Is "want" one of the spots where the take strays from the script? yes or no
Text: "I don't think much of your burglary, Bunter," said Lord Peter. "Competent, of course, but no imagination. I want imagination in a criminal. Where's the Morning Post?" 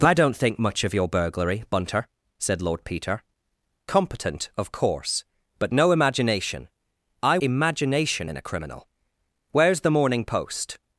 yes